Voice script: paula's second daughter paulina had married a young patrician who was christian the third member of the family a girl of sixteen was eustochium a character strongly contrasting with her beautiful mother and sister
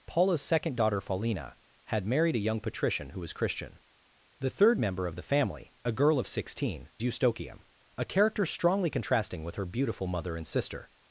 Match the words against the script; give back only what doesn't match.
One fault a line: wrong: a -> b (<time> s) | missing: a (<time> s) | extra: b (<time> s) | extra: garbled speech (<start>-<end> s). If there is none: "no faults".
missing: was (6.9 s)